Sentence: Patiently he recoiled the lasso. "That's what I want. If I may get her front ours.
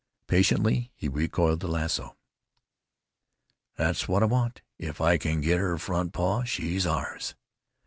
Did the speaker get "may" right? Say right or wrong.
wrong